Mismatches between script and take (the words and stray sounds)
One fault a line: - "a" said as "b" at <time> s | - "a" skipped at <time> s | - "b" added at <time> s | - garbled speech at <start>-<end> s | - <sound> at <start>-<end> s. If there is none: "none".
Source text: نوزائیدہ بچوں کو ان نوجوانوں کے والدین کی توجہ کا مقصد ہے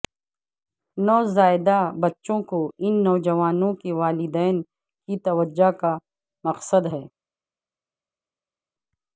none